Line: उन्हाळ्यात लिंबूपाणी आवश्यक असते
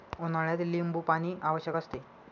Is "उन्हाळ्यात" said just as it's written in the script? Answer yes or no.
yes